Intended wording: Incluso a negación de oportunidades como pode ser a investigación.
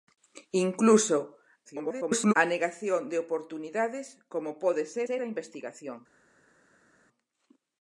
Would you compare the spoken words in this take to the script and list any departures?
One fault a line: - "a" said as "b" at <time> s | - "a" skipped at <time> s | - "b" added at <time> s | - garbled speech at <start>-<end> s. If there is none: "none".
- garbled speech at 1.6-2.3 s
- "ser" added at 5.1 s